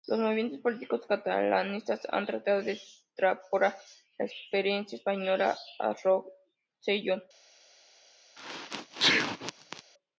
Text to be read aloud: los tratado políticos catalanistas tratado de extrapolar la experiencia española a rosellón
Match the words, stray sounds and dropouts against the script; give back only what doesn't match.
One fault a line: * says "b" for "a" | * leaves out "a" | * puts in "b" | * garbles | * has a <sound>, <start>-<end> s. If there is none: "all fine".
* says "movimientos" for "tratado"
* puts in "han"
* has a sneeze, 8.4-9.8 s